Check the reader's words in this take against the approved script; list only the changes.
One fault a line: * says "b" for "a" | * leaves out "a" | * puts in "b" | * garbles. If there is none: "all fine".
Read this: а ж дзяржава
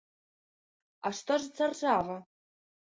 * puts in "што"